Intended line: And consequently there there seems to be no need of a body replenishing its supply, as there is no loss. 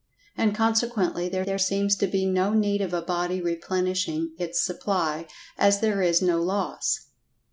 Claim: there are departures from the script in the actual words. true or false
false